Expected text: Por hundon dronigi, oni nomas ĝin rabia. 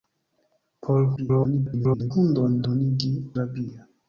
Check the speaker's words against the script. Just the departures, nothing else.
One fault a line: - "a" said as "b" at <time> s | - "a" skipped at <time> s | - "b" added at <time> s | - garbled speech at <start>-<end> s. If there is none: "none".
- garbled speech at 1.2-2.1 s
- "oni nomas ĝin" skipped at 3.1 s